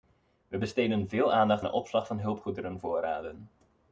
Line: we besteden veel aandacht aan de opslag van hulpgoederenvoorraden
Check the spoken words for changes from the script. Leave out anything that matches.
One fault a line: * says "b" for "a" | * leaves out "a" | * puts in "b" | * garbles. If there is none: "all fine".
* leaves out "aan"